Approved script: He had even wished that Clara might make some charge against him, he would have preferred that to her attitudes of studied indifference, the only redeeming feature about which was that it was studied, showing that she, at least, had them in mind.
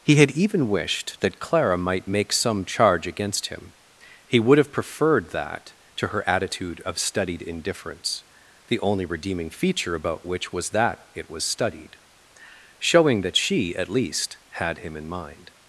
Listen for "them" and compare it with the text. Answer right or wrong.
wrong